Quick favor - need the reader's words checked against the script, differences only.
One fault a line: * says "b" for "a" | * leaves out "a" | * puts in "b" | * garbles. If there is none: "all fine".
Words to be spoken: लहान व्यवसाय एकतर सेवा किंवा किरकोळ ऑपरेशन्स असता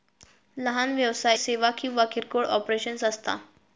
* leaves out "एकतर"